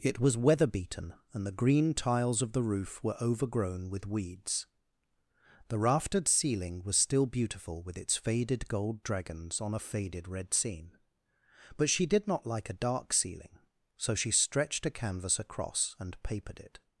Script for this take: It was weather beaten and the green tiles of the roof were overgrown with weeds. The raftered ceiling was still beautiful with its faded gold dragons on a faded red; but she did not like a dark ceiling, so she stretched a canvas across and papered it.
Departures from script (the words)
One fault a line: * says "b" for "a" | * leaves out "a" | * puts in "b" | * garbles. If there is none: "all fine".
* puts in "scene"